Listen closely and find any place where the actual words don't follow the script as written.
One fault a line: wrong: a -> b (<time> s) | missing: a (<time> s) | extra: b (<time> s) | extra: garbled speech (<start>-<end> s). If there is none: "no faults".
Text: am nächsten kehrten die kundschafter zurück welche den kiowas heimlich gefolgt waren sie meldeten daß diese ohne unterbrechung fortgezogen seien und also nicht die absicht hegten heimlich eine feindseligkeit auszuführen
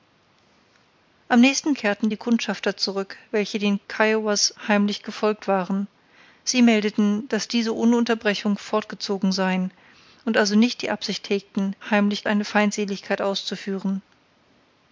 no faults